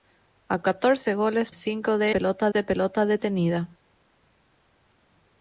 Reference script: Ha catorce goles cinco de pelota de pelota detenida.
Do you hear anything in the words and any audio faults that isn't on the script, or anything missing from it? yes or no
no